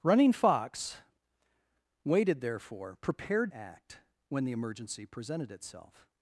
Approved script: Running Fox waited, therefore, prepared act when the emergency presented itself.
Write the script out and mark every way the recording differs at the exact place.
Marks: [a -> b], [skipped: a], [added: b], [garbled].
Running Fox waited, therefore, prepared act when the emergency presented itself.